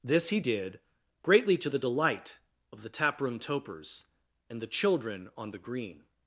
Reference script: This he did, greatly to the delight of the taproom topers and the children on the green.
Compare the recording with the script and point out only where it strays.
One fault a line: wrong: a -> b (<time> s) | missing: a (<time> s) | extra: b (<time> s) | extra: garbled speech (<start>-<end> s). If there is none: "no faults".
no faults